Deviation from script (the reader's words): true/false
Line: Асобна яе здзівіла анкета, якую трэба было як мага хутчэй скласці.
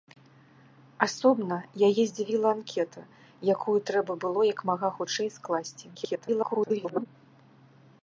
true